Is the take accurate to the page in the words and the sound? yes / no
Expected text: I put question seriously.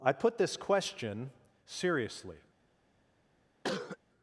no